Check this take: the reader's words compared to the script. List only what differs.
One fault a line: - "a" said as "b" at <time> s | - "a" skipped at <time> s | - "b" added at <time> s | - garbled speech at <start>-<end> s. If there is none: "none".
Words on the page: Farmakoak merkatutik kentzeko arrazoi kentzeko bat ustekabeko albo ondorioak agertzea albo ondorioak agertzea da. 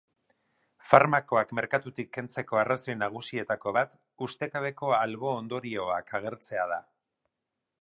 - "kentzeko" said as "nagusietako" at 3.0 s
- "albo ondorioak agertzea" skipped at 6.7 s